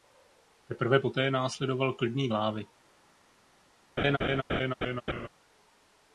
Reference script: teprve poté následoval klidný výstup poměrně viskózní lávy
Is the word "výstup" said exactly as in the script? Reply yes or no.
no